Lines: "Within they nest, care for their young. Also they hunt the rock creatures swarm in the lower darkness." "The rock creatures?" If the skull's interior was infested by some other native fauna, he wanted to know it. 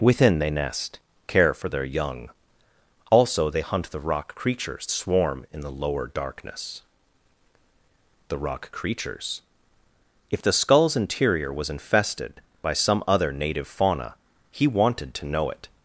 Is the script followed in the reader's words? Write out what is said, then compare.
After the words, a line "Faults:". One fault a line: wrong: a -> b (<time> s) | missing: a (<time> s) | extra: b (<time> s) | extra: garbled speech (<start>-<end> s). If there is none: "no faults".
"Within they nest, care for their young. Also they hunt the rock creatures swarm in the lower darkness." "The rock creatures?" If the skull's interior was infested by some other native fauna, he wanted to know it.
Faults:
no faults